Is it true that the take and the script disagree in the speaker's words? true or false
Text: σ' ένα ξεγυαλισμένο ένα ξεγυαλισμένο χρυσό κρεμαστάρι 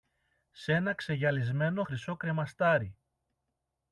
true